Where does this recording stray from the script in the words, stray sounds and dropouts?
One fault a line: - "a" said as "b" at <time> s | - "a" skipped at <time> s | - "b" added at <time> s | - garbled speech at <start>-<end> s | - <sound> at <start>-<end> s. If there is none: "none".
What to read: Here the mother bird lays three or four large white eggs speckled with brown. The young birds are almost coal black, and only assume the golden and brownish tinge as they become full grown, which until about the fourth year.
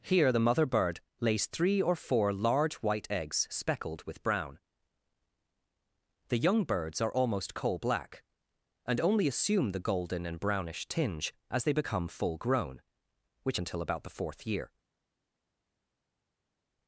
none